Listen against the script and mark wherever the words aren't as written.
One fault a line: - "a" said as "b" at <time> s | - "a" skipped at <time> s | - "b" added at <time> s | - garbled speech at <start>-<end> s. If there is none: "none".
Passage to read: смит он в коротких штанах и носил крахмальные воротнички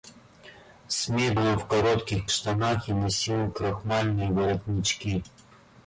none